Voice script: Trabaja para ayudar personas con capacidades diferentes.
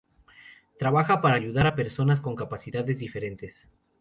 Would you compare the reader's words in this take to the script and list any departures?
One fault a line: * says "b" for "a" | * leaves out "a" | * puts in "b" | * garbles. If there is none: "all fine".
* puts in "a"